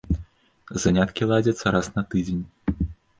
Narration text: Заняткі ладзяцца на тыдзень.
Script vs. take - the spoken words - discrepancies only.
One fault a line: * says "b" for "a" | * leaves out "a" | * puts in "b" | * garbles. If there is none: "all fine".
* puts in "раз"